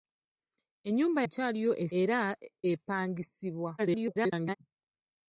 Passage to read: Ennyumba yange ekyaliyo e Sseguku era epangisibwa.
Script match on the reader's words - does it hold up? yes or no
no